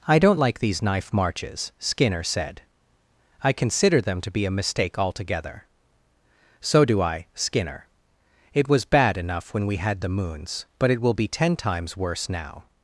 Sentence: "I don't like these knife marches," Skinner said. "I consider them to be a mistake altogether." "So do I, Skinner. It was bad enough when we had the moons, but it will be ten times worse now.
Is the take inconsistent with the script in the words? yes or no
no